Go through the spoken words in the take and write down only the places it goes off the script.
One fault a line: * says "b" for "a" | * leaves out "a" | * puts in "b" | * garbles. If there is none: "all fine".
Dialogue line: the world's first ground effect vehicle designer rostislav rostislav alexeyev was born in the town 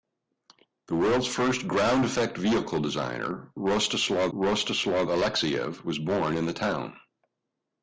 all fine